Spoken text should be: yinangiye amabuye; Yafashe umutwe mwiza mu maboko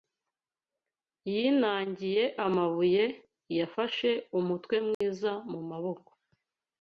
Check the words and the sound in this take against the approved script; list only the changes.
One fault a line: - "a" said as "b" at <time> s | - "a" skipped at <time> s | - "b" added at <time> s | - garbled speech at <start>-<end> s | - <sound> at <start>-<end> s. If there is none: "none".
- dropout at 4.9-5.0 s